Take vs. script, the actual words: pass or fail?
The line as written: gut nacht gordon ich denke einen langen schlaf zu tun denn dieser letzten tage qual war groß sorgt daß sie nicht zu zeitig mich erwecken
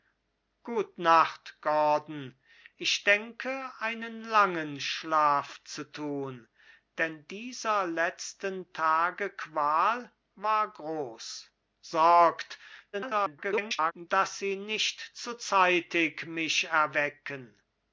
fail